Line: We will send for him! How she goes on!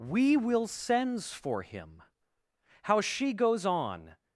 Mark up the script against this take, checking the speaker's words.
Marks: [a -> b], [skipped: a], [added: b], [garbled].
We will [send -> sends] for him! How she goes on!